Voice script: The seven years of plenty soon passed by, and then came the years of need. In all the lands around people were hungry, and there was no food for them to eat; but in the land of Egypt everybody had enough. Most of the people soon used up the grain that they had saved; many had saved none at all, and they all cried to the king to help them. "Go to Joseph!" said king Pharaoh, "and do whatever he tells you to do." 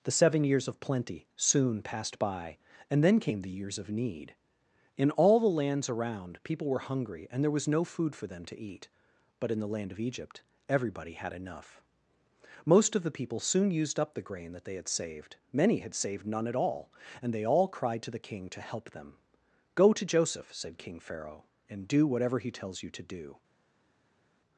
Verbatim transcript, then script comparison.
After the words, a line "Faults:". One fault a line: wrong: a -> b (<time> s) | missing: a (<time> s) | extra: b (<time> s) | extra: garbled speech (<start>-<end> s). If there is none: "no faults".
The seven years of plenty soon passed by, and then came the years of need. In all the lands around people were hungry, and there was no food for them to eat; but in the land of Egypt everybody had enough. Most of the people soon used up the grain that they had saved; many had saved none at all, and they all cried to the king to help them. "Go to Joseph!" said king Pharaoh, "and do whatever he tells you to do."
Faults:
no faults